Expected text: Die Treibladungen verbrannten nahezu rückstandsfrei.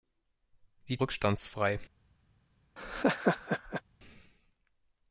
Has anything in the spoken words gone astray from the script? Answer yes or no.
yes